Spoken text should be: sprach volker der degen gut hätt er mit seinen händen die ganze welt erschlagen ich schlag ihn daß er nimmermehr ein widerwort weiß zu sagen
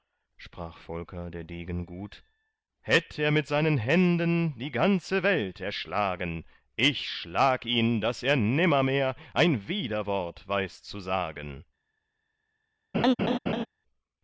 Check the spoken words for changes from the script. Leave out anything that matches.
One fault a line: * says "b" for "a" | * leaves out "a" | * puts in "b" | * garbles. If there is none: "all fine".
all fine